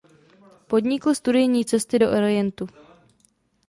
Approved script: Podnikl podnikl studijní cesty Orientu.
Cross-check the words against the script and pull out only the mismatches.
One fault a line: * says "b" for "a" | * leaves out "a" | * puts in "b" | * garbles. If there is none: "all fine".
* leaves out "podnikl"
* puts in "do"